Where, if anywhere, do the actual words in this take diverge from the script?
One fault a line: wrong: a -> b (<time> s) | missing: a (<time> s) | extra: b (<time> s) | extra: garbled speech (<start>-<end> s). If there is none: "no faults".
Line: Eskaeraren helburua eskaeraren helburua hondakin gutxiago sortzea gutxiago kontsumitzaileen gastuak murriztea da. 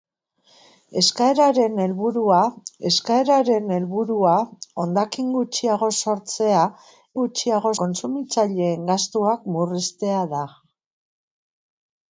no faults